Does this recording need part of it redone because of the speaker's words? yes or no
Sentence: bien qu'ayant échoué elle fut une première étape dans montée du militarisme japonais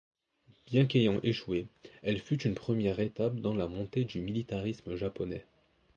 yes